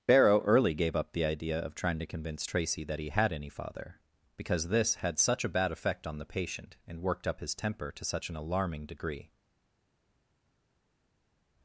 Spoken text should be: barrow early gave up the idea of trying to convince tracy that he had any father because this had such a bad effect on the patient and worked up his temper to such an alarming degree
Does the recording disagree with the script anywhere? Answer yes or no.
no